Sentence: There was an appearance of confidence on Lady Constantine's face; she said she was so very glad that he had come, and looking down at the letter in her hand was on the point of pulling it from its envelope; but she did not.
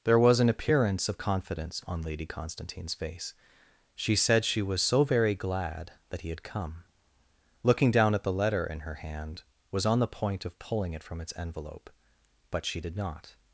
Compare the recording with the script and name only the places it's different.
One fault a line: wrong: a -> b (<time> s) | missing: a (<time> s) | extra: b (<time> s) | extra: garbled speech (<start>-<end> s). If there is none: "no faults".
missing: and (6.8 s)